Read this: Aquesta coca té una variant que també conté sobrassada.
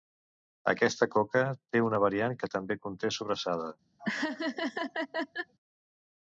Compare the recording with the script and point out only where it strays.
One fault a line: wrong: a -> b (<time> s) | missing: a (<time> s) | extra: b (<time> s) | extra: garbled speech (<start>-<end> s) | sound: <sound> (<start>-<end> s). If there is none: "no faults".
sound: laugh (4.0-5.5 s)